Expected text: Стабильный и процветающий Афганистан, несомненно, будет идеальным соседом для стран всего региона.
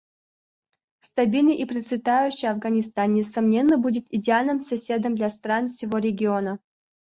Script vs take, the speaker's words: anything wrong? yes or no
no